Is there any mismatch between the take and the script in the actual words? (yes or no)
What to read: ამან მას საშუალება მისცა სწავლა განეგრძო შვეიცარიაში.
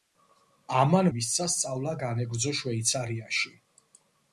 yes